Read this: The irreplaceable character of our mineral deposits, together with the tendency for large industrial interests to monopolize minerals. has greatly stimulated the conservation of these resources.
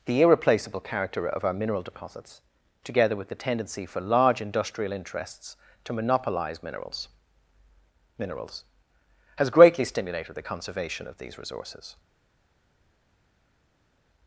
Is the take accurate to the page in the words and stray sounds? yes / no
no